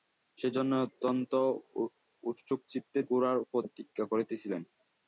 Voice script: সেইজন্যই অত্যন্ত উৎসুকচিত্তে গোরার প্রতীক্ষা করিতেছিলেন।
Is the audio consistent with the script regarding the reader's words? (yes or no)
yes